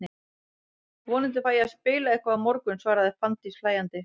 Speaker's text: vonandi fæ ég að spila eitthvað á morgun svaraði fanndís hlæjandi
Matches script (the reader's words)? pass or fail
pass